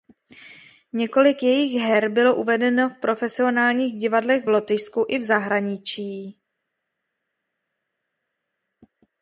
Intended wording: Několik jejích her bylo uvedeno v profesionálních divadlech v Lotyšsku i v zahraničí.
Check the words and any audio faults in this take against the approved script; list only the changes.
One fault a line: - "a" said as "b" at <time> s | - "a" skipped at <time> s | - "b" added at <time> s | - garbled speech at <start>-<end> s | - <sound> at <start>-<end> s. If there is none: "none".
none